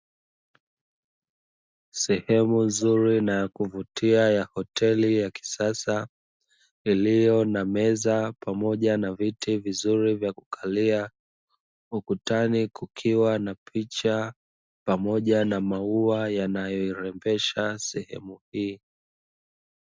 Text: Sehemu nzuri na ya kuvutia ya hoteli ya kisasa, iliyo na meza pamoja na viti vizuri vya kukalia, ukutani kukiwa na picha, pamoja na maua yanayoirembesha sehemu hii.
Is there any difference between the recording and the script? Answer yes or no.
no